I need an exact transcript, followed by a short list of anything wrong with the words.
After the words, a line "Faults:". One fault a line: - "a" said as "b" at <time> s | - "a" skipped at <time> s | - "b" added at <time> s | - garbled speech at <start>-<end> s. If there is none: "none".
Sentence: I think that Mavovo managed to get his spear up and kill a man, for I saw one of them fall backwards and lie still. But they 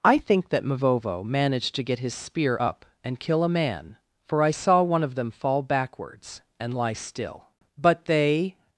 I think that Mavovo managed to get his spear up and kill a man, for I saw one of them fall backwards and lie still. But they
Faults:
none